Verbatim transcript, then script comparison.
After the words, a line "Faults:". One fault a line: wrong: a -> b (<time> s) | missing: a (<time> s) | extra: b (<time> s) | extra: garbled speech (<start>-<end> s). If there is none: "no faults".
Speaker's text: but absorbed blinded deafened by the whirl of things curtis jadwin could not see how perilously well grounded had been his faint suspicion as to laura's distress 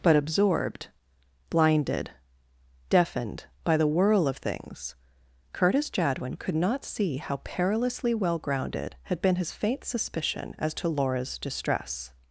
but absorbed blinded deafened by the whirl of things curtis jadwin could not see how perilously well grounded had been his faint suspicion as to laura's distress
Faults:
no faults